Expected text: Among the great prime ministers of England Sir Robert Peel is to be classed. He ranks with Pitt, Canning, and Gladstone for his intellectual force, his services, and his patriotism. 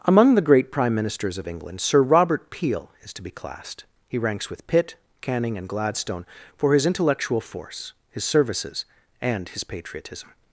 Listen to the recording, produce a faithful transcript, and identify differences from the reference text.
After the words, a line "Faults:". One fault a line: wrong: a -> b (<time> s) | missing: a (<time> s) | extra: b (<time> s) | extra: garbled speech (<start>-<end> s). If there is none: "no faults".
Among the great prime ministers of England Sir Robert Peel is to be classed. He ranks with Pitt, Canning, and Gladstone for his intellectual force, his services, and his patriotism.
Faults:
no faults